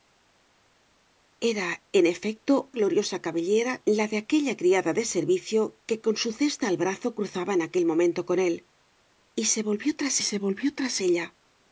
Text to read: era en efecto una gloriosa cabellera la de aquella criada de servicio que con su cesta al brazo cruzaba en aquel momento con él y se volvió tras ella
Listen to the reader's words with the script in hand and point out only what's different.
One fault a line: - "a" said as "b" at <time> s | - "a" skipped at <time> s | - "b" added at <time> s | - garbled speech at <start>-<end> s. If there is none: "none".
- "una" skipped at 2.5 s
- "se volvió tras" added at 10.3 s